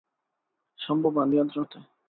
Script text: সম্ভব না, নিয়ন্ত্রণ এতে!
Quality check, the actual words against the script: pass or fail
pass